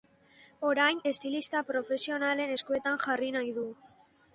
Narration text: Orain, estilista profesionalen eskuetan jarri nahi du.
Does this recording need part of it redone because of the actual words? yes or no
no